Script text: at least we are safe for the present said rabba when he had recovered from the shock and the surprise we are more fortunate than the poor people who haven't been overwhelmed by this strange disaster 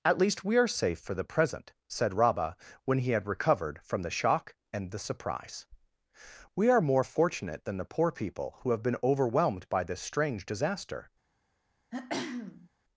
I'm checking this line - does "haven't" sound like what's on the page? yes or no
no